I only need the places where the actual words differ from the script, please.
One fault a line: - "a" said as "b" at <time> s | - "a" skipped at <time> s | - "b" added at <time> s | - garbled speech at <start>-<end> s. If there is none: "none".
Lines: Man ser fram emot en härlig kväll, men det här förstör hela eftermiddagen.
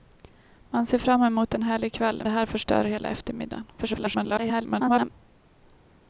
- "men" skipped at 2.2 s
- garbled speech at 3.8-5.1 s